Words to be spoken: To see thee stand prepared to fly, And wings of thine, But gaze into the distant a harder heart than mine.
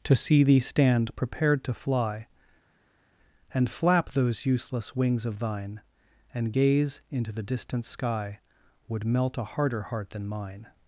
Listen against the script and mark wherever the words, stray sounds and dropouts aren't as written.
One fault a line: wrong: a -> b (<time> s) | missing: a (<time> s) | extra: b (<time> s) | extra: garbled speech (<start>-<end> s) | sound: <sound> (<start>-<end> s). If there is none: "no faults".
extra: flap those useless (3.7 s)
wrong: But -> And (6.3 s)
extra: sky Would melt (7.8 s)